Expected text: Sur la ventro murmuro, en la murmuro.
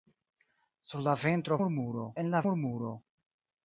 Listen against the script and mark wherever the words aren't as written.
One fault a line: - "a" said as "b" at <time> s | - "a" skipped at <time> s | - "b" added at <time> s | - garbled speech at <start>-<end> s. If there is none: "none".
none